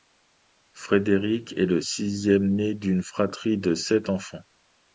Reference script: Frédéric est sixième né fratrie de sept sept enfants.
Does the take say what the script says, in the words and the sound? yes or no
no